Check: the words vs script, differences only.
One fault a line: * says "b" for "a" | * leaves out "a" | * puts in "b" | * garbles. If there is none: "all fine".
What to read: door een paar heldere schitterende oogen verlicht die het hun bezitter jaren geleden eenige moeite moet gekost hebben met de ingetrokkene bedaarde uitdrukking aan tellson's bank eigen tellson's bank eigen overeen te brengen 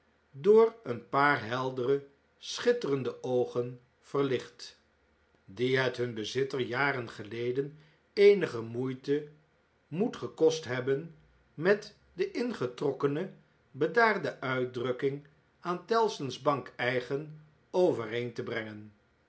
* leaves out "tellson's bank eigen"